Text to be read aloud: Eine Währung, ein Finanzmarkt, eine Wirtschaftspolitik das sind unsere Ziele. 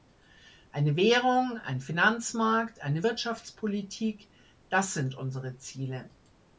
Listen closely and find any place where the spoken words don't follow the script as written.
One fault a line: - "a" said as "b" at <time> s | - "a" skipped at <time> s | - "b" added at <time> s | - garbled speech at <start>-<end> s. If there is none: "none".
none